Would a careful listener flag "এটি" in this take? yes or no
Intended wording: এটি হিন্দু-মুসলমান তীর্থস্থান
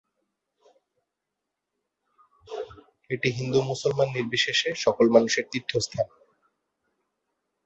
no